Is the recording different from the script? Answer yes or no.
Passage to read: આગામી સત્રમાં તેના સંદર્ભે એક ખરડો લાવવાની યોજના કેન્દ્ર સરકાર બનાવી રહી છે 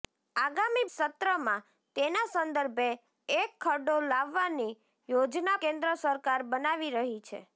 no